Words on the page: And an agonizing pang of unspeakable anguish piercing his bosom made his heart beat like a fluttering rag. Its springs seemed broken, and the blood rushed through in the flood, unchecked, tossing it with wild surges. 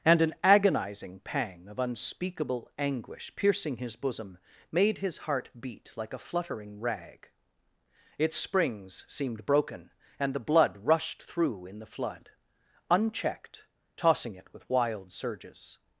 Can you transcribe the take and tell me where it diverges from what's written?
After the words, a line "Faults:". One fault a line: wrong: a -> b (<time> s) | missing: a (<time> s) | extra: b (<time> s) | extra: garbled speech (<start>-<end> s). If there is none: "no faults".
And an agonizing pang of unspeakable anguish piercing his bosom made his heart beat like a fluttering rag. Its springs seemed broken, and the blood rushed through in the flood, unchecked, tossing it with wild surges.
Faults:
no faults